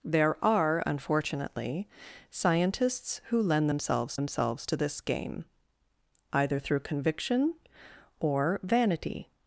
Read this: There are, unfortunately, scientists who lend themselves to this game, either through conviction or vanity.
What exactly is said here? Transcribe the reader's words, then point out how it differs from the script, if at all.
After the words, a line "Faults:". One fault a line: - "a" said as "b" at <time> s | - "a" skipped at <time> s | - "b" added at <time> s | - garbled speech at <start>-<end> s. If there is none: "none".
There are, unfortunately, scientists who lend themselves themselves to this game, either through conviction or vanity.
Faults:
- "themselves" added at 4.1 s